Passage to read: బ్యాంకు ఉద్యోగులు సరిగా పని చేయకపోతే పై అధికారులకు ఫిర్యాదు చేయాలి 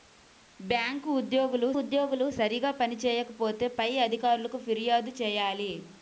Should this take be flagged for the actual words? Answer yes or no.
yes